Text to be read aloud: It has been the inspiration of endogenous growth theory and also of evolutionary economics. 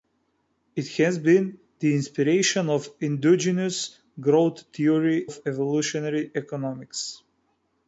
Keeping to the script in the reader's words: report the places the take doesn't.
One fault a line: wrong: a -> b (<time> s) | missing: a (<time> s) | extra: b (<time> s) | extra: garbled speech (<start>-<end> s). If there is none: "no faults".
missing: and also (5.3 s)